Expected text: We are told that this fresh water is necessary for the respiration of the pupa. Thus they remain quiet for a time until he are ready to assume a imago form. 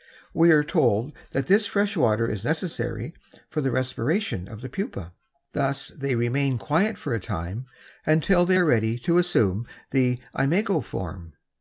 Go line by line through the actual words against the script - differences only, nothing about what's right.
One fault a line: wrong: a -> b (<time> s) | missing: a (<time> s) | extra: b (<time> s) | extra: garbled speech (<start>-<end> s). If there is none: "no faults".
wrong: he -> they (8.4 s)
wrong: a -> the (9.9 s)